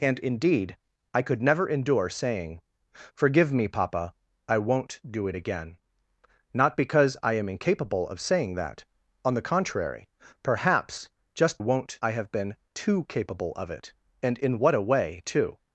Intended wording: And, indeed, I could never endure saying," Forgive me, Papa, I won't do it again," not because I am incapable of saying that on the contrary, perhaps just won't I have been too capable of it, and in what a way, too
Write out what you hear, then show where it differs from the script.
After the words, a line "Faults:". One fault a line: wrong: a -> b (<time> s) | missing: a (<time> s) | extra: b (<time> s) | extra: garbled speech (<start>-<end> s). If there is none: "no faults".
And, indeed, I could never endure saying," Forgive me, Papa, I won't do it again," not because I am incapable of saying that on the contrary, perhaps just won't I have been too capable of it, and in what a way, too
Faults:
no faults